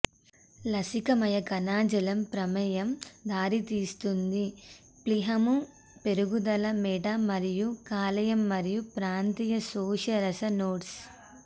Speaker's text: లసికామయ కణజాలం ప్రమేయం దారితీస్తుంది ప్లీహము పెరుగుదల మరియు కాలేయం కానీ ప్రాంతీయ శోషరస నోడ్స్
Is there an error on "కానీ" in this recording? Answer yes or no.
yes